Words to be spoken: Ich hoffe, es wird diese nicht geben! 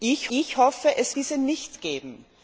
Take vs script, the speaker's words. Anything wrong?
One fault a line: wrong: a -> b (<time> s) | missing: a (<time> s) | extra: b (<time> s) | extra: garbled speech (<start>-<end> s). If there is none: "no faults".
extra: ich (0.3 s)
missing: wird (1.2 s)